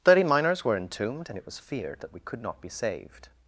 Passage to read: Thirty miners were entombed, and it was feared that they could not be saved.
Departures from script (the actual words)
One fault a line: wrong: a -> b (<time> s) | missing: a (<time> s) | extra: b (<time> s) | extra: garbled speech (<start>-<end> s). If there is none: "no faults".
wrong: they -> we (2.1 s)